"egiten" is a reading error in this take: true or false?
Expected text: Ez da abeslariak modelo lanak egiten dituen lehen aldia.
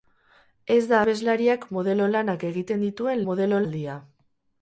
false